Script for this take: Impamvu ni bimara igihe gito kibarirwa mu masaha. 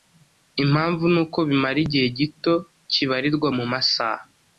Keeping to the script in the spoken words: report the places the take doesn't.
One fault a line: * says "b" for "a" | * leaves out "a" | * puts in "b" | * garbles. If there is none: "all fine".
* puts in "uko"